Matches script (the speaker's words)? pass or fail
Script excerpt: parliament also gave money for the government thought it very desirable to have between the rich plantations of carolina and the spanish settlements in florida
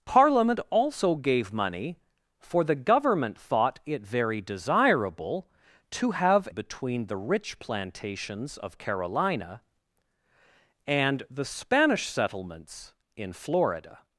pass